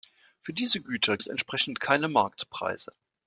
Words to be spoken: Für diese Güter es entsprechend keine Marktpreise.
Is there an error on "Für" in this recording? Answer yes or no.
no